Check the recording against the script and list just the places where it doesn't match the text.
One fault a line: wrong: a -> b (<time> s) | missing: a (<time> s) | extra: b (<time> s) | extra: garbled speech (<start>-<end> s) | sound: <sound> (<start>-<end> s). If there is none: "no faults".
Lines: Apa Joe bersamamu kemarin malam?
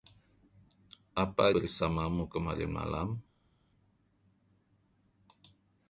missing: Joe (1.5 s)